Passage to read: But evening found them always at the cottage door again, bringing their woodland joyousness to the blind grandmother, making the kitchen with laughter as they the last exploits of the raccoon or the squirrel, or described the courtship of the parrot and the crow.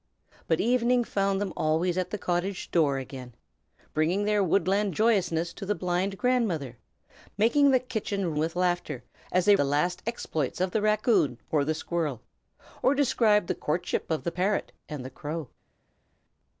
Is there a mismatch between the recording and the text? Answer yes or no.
no